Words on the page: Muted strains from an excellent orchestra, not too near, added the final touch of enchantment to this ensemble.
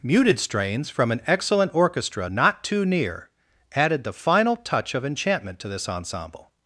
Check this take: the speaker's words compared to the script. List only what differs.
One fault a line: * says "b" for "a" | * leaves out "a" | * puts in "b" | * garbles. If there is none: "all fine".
all fine